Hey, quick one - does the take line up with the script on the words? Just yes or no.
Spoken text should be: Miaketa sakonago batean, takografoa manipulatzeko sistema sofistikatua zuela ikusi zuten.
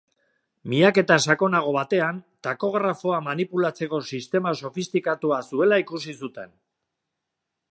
yes